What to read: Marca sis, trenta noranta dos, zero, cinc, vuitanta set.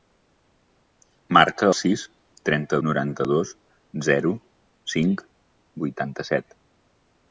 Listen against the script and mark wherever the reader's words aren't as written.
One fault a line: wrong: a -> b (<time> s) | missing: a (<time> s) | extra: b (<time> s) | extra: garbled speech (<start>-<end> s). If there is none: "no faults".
no faults